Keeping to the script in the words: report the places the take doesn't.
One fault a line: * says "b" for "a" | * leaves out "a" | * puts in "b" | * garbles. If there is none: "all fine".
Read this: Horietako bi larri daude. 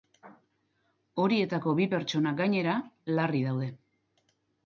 * puts in "pertsona gainera"